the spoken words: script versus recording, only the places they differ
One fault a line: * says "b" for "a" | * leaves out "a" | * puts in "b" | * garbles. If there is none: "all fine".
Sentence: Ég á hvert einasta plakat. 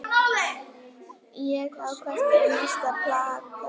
all fine